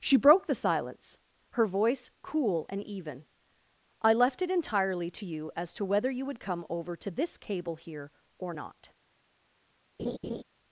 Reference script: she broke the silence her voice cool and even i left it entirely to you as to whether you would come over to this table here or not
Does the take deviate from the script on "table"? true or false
true